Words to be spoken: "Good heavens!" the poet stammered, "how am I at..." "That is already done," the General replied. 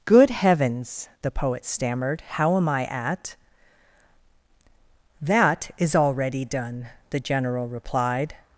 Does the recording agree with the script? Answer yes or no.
yes